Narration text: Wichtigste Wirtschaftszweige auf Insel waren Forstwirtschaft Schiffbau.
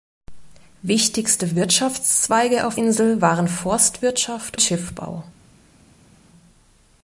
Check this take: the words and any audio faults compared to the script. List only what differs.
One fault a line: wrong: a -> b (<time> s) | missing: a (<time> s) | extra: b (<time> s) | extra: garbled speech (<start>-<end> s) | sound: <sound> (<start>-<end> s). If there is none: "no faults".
no faults